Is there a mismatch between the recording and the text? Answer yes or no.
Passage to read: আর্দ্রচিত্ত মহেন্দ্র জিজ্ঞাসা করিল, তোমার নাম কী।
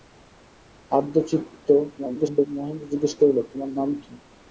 yes